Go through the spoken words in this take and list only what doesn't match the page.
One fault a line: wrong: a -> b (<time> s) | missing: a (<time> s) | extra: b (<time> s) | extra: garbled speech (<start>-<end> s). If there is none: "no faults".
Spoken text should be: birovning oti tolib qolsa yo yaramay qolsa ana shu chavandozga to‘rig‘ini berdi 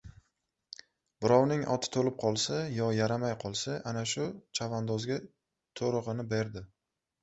no faults